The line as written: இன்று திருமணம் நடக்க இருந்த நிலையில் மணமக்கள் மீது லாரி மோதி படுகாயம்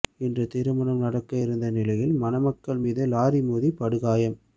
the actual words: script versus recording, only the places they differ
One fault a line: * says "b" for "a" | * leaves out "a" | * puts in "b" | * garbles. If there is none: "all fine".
all fine